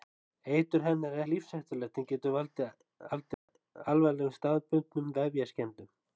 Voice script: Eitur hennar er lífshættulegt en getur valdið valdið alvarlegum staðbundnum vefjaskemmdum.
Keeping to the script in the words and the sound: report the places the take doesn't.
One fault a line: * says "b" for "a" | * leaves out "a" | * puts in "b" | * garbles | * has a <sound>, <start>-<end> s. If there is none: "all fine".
* has a dropout, 3.3-3.5 s